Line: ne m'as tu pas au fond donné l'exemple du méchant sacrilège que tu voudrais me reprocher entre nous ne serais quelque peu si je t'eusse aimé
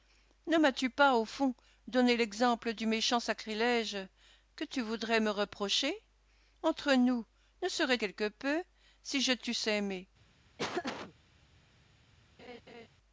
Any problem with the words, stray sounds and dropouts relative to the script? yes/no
yes